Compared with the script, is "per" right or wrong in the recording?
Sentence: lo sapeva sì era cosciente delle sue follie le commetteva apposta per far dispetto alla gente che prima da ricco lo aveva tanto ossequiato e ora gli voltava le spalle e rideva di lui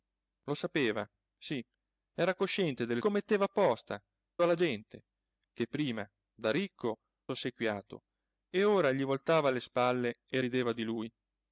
wrong